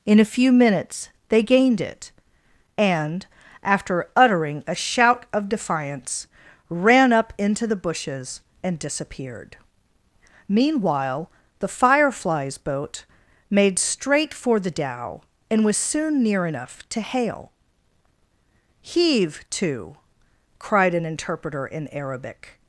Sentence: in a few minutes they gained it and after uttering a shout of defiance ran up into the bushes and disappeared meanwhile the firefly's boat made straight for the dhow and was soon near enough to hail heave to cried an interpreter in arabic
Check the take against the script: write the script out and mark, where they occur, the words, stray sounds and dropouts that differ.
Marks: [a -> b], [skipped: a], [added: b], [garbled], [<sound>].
in a few minutes they gained it and after uttering a shout of defiance ran up into the bushes and disappeared meanwhile the firefly's boat made straight for the dhow and was soon near enough to hail heave to cried an interpreter in arabic